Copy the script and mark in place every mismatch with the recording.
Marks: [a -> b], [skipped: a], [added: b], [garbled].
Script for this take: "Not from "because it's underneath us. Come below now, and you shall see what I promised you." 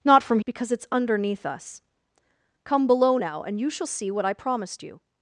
"Not from "because it's underneath us. Come below now, and you shall see what I promised you."